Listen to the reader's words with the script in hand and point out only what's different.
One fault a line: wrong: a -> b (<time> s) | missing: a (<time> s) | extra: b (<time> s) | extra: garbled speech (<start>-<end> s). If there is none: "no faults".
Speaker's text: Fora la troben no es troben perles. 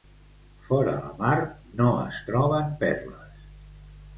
wrong: troben -> mar (1.2 s)